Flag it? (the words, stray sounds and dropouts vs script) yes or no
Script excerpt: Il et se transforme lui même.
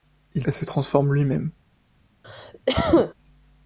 yes